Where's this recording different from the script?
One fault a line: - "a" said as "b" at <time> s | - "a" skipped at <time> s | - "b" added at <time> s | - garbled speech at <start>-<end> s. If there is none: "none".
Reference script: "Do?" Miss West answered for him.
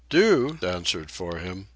- "Miss West" skipped at 0.6 s